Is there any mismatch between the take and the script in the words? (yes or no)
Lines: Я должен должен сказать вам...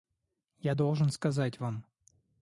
yes